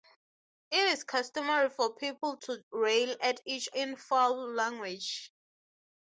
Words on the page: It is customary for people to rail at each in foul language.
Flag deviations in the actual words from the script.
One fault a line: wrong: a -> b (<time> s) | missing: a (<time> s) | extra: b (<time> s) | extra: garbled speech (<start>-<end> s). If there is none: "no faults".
no faults